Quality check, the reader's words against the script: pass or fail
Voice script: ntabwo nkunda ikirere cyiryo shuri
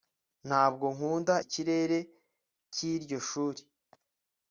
pass